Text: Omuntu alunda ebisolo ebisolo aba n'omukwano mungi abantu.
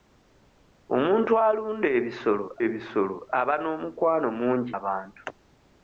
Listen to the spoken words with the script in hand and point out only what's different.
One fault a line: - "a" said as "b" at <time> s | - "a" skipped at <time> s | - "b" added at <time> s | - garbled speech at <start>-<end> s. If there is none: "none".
none